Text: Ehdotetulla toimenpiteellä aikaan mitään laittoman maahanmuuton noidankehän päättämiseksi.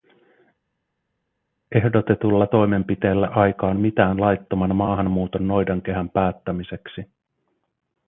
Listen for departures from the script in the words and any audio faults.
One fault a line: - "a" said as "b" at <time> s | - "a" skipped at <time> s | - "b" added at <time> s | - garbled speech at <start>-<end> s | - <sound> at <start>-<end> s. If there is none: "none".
none